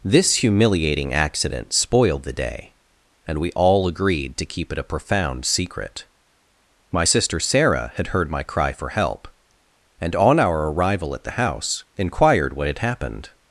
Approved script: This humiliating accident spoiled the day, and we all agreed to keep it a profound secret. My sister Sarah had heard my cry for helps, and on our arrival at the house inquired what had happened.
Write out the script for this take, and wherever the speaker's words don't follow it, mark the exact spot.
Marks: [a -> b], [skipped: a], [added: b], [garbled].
This humiliating accident spoiled the day, and we all agreed to keep it a profound secret. My sister Sarah had heard my cry for [helps, -> help] and on our arrival at the house inquired what had happened.